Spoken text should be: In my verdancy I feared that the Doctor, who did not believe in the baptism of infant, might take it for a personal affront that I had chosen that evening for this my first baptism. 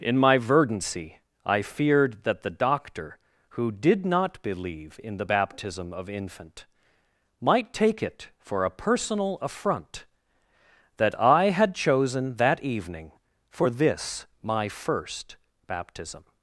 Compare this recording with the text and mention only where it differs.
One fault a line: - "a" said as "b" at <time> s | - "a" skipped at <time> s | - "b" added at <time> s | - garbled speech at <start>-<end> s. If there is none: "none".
none